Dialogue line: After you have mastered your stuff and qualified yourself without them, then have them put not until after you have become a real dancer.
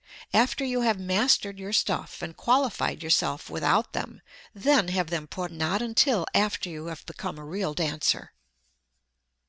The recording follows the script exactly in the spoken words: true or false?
true